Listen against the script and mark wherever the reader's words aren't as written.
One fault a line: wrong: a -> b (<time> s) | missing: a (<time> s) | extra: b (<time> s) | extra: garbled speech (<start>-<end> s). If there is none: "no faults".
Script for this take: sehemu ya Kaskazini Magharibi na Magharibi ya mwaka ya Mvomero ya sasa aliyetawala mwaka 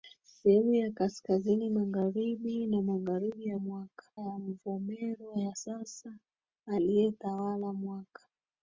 no faults